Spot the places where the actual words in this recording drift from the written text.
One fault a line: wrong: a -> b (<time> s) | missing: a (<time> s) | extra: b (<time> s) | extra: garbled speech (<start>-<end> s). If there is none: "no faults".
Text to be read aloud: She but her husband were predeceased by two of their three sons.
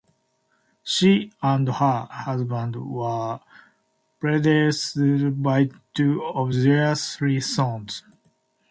wrong: but -> and (1.4 s)